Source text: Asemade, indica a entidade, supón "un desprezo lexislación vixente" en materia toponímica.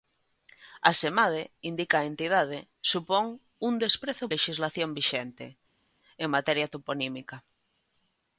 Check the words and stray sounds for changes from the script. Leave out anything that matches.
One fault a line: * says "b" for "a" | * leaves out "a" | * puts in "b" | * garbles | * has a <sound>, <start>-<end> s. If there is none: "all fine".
all fine